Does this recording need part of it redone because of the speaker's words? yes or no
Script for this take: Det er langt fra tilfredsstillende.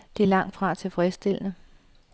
no